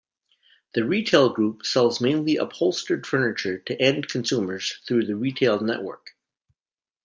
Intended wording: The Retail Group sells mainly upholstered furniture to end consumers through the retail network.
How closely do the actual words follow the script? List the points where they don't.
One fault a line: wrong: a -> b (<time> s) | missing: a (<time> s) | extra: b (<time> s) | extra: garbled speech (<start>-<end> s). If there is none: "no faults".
no faults